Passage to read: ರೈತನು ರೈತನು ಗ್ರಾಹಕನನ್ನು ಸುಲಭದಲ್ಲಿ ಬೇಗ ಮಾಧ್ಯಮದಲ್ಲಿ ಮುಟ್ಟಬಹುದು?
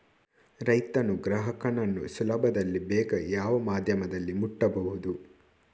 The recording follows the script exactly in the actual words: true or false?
false